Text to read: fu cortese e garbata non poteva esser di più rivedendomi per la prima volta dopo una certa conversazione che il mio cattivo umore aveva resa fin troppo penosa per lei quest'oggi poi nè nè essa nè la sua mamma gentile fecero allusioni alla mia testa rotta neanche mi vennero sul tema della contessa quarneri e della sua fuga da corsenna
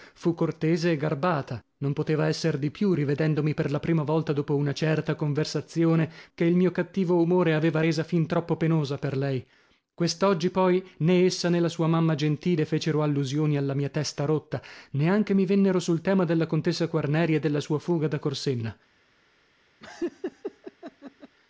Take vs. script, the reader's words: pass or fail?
fail